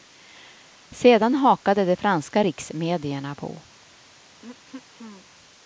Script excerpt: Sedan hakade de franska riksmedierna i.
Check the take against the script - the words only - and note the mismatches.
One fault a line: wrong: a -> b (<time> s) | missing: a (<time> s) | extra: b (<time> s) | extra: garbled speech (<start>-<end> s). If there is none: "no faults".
wrong: i -> på (3.4 s)